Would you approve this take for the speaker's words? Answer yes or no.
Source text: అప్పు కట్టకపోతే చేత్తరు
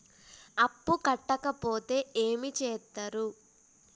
no